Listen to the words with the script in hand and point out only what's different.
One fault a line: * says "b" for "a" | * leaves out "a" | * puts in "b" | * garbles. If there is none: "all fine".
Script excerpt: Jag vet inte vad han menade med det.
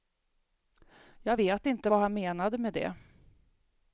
all fine